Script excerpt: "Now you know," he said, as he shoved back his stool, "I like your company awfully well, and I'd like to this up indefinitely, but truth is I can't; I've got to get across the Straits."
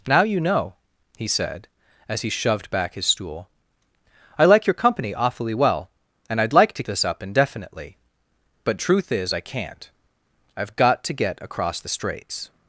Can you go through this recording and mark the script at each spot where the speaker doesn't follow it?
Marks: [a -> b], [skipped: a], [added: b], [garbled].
"Now you know," he said, as he shoved back his stool, "I like your company awfully well, and I'd like to this up indefinitely, but truth is I can't; I've got to get across the Straits."